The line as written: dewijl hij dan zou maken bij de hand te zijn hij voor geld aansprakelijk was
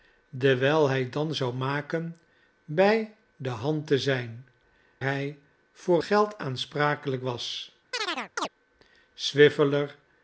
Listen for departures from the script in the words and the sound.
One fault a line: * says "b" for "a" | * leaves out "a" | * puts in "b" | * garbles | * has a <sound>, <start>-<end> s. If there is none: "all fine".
* has a chirp, 7.9-8.5 s